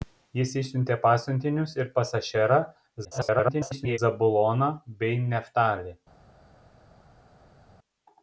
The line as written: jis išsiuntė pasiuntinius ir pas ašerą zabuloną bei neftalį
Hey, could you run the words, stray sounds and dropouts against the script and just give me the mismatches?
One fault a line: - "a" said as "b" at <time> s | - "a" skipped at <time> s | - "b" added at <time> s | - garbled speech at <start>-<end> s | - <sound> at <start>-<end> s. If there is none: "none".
- garbled speech at 3.0-4.0 s